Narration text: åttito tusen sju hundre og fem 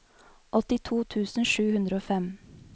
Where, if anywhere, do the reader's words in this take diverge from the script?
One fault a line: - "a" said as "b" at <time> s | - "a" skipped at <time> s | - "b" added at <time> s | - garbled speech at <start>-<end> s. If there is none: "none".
none